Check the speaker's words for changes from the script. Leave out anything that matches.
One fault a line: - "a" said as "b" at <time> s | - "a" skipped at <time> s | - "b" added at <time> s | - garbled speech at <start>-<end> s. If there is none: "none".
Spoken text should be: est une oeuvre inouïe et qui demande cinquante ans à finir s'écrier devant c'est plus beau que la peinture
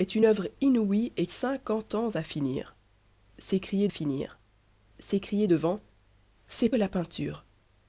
- "qui demande" skipped at 1.3 s
- "finir s'écrier" added at 3.9 s
- "plus beau que" skipped at 6.7 s